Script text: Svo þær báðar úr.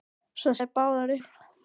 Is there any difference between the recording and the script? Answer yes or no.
no